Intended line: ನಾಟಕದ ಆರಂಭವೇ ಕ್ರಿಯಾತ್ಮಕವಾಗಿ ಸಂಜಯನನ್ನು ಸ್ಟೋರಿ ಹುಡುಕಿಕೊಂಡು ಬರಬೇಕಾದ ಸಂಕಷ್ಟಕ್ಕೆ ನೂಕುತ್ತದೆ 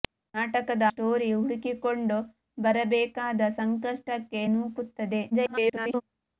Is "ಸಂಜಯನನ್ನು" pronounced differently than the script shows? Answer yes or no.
yes